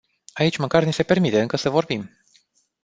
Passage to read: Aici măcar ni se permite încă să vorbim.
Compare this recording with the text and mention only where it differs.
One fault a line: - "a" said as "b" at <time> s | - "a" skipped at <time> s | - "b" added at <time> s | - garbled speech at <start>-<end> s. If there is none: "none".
none